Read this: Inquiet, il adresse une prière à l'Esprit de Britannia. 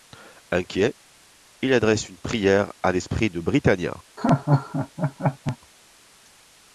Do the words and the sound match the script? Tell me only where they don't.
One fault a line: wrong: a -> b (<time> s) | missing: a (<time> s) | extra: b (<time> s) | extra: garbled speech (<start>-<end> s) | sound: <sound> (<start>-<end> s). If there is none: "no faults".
sound: laugh (4.2-5.6 s)